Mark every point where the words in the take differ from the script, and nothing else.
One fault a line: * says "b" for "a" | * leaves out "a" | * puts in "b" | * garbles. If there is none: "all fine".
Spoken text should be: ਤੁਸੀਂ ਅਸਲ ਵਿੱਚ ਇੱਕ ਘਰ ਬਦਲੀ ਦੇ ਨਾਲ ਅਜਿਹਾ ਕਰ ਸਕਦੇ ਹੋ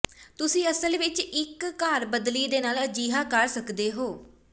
all fine